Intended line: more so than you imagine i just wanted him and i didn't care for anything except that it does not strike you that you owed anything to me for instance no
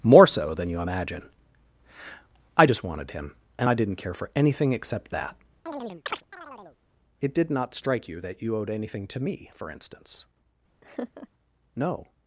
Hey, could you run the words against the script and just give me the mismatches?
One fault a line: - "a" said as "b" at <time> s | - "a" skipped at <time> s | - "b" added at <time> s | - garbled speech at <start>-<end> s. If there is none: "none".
- "does" said as "did" at 7.3 s